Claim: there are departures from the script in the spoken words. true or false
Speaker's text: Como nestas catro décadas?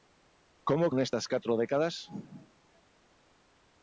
false